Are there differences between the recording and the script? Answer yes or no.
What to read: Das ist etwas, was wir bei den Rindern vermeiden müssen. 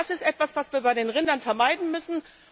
no